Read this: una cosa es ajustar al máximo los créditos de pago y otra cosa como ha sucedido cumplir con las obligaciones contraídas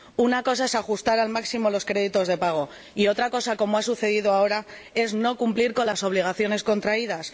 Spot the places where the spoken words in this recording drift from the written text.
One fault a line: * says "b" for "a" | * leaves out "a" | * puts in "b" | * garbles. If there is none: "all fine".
* puts in "ahora es no"